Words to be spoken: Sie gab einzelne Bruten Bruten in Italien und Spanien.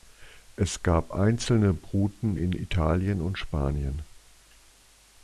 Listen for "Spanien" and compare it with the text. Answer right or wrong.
right